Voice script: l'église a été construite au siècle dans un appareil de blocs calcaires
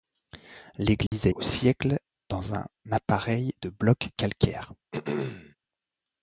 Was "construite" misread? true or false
true